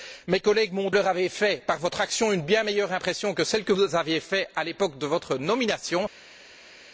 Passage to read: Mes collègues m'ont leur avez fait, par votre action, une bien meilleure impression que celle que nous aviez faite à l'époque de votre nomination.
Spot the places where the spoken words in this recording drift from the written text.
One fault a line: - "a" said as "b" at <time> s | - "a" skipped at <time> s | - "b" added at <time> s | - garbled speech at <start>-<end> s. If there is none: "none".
none